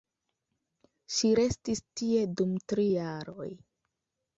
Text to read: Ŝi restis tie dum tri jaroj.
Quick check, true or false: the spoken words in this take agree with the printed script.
true